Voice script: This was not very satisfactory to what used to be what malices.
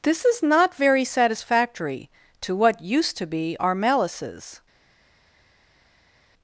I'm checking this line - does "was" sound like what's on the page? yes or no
no